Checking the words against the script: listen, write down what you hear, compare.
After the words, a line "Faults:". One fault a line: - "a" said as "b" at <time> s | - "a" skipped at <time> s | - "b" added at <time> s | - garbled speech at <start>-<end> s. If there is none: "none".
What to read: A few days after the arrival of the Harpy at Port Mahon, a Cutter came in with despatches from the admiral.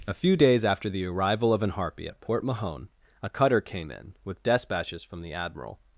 A few days after the arrival of an Harpy at Port Mahon, a Cutter came in with despatches from the admiral.
Faults:
- "the" said as "an" at 1.6 s